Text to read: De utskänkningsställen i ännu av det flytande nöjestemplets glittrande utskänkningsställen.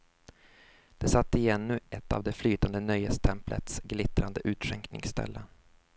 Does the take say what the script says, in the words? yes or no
no